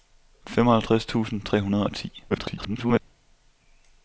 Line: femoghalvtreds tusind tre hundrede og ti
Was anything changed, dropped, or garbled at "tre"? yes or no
no